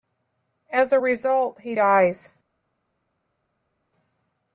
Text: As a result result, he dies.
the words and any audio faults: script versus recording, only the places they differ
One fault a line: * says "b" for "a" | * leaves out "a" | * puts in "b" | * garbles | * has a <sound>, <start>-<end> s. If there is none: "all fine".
* leaves out "result"